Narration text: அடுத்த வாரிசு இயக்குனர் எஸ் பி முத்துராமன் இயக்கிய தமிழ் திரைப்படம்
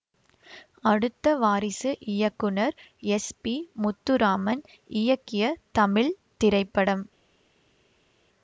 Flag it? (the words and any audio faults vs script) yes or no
no